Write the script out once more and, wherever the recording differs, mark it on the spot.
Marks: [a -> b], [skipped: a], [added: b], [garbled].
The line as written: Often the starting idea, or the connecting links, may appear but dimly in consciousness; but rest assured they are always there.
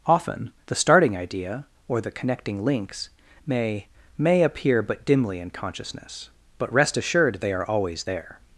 Often the starting idea, or the connecting links, may [added: may] appear but dimly in consciousness; but rest assured they are always there.